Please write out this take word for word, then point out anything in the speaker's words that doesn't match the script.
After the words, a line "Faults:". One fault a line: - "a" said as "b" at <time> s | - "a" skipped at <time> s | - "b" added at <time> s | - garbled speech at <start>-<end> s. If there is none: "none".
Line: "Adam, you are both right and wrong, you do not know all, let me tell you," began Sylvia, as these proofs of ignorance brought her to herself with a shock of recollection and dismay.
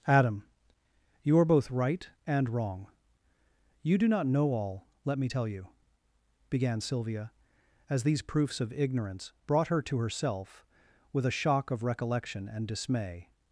"Adam, you are both right and wrong, you do not know all, let me tell you," began Sylvia, as these proofs of ignorance brought her to herself with a shock of recollection and dismay.
Faults:
none